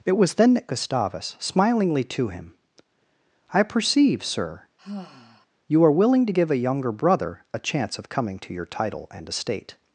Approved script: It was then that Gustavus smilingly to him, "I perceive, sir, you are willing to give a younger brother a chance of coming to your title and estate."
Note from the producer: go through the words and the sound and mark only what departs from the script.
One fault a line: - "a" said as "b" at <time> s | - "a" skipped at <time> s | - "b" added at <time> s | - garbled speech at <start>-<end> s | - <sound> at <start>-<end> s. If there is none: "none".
- sigh at 4.8-5.5 s